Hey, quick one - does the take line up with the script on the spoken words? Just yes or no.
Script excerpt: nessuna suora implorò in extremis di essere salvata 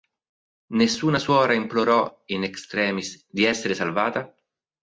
yes